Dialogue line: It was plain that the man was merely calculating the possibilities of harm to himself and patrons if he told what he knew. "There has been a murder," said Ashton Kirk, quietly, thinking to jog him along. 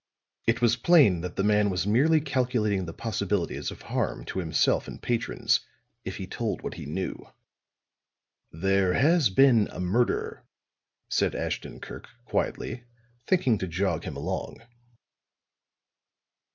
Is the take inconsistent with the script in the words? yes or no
no